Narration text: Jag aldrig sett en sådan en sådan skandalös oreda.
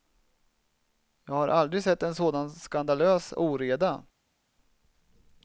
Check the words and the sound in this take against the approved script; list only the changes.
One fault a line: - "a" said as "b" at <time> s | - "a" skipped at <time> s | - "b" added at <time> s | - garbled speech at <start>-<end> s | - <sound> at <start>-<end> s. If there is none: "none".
- "har" added at 1.3 s
- "en sådan" skipped at 2.5 s